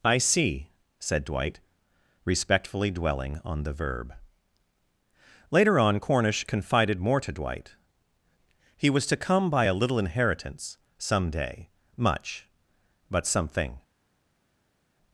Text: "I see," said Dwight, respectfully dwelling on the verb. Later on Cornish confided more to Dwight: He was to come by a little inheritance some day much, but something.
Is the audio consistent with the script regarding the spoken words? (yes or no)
yes